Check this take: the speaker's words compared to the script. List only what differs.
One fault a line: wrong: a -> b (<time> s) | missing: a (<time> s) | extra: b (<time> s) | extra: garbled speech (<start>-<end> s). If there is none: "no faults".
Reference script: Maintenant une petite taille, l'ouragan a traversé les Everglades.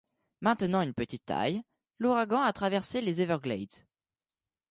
no faults